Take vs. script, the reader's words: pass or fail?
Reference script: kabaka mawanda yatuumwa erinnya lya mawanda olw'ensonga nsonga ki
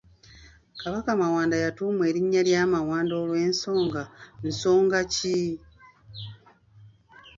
pass